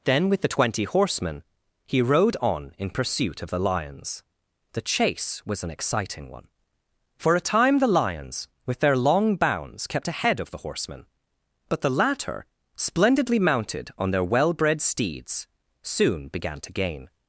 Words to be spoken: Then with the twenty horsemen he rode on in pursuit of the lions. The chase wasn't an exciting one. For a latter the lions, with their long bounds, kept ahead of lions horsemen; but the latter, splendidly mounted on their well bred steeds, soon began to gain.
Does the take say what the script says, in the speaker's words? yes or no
no